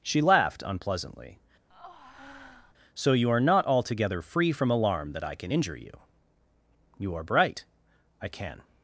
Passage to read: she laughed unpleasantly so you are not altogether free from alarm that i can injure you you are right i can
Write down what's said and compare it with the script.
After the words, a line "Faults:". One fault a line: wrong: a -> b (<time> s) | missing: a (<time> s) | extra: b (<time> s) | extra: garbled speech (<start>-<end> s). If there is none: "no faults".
she laughed unpleasantly so you are not altogether free from alarm that i can injure you you are bright i can
Faults:
wrong: right -> bright (7.2 s)